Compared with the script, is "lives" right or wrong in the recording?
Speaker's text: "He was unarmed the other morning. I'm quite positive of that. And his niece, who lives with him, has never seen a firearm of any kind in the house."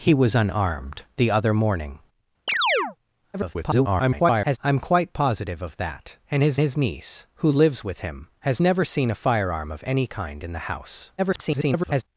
right